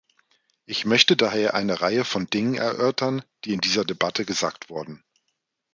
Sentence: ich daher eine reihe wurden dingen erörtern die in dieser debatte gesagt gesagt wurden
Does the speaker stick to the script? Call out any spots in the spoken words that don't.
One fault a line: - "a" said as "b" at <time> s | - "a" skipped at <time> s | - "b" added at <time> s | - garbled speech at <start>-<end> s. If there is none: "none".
- "möchte" added at 0.8 s
- "wurden" said as "von" at 2.0 s
- "gesagt" skipped at 4.7 s